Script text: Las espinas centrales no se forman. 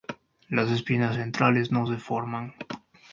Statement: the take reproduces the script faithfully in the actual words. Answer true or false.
true